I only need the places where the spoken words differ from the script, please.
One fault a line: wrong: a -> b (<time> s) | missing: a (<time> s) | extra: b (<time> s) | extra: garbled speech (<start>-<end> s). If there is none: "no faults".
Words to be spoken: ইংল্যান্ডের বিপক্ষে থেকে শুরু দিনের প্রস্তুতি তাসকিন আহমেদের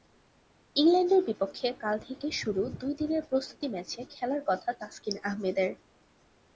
extra: কাল (1.8 s)
extra: দুই (2.8 s)
extra: ম্যাচে খেলার কথা (3.7 s)